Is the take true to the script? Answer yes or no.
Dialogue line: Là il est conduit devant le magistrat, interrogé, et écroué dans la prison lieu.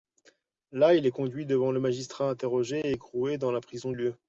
yes